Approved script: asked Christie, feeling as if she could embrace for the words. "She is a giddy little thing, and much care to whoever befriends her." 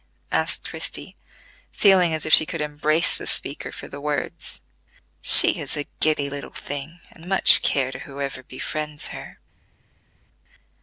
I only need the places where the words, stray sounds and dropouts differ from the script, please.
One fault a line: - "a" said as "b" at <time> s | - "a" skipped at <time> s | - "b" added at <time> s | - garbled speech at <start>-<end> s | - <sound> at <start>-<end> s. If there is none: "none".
- "the speaker" added at 3.2 s